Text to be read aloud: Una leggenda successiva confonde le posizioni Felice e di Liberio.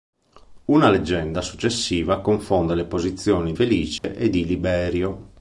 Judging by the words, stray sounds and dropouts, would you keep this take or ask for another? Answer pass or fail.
fail